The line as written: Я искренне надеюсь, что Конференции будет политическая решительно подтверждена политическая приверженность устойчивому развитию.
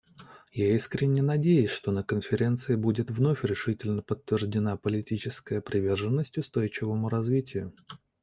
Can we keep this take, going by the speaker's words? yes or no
no